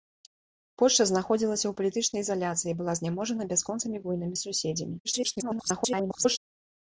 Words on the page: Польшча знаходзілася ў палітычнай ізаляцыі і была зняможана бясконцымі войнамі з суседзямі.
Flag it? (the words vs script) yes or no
yes